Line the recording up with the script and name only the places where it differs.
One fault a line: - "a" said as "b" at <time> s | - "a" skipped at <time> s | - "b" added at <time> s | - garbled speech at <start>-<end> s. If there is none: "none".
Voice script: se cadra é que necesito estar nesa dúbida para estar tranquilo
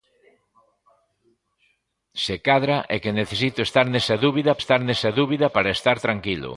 - "estar nesa dúbida" added at 4.6 s